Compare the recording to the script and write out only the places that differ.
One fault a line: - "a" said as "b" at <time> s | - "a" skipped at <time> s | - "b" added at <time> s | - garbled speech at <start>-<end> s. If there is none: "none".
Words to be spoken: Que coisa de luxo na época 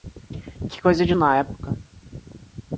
- "luxo" skipped at 1.1 s